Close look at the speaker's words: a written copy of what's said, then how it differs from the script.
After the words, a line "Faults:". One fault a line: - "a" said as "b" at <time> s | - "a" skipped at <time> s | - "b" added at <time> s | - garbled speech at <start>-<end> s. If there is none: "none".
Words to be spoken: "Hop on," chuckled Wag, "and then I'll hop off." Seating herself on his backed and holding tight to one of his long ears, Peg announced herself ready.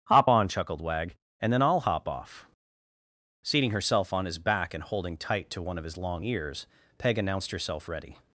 "Hop on," chuckled Wag, "and then I'll hop off." Seating herself on his back and holding tight to one of his long ears, Peg announced herself ready.
Faults:
- "backed" said as "back" at 4.4 s